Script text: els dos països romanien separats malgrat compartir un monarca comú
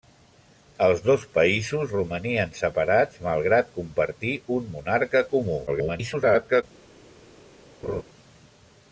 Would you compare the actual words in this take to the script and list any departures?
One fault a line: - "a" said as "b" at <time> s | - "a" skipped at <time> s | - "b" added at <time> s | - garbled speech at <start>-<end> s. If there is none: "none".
- garbled speech at 5.7-6.6 s